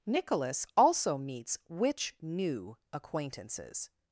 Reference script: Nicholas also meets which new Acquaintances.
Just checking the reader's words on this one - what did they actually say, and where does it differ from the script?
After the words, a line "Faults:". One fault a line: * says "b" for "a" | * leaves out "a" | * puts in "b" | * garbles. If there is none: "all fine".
Nicholas also meets which new Acquaintances.
Faults:
all fine